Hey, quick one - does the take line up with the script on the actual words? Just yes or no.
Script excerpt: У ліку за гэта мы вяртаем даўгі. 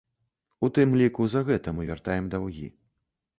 no